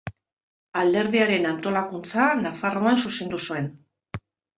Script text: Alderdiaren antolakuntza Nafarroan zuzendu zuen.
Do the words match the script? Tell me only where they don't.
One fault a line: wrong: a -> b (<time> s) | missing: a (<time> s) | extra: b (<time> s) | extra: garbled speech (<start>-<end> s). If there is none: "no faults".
no faults